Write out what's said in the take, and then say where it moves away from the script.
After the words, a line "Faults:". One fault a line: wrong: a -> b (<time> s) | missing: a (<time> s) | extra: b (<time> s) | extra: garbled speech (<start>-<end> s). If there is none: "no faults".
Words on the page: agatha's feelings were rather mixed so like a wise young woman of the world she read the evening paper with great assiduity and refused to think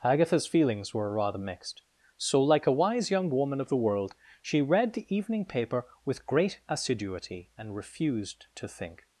agatha's feelings were rather mixed so like a wise young woman of the world she read the evening paper with great assiduity and refused to think
Faults:
no faults